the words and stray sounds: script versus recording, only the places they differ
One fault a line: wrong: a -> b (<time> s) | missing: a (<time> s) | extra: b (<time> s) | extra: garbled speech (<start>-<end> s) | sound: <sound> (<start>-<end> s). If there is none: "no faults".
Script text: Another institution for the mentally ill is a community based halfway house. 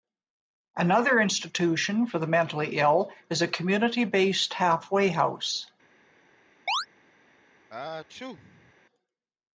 sound: chirp (6.7-6.9 s)
sound: sneeze (7.7-8.7 s)